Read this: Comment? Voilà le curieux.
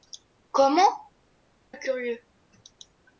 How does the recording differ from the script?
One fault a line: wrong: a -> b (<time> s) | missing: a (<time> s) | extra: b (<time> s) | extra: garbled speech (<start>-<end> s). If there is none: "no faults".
missing: Voilà (1.0 s)